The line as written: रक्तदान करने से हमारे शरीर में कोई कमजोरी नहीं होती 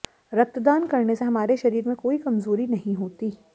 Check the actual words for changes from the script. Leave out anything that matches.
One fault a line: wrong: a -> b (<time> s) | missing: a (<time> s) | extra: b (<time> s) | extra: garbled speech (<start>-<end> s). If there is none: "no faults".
no faults